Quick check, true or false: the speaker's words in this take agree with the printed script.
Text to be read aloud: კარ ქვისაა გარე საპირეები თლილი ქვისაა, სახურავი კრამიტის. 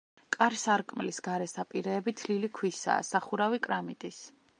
false